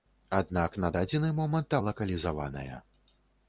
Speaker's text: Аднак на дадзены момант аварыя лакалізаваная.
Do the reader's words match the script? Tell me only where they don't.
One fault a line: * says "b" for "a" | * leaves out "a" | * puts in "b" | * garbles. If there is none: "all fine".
* leaves out "аварыя"